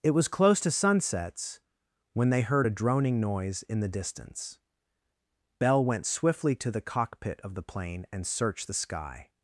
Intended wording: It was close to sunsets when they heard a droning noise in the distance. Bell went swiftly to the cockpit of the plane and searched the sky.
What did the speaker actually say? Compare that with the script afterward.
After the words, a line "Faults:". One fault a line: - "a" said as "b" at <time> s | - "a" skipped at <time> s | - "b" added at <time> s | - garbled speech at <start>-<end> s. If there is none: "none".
It was close to sunsets when they heard a droning noise in the distance. Bell went swiftly to the cockpit of the plane and searched the sky.
Faults:
none